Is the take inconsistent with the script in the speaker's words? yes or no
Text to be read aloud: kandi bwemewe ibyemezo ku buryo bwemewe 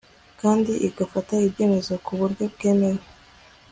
yes